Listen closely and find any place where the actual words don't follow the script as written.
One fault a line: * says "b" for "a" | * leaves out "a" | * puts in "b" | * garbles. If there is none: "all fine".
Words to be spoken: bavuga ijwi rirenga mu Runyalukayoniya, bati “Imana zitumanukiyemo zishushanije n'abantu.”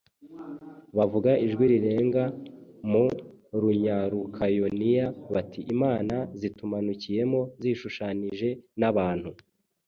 all fine